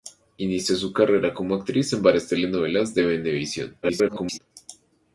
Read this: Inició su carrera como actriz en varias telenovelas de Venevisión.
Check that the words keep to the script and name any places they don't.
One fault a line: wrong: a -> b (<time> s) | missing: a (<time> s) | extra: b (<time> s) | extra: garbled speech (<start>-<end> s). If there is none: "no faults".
extra: garbled speech (3.8-4.4 s)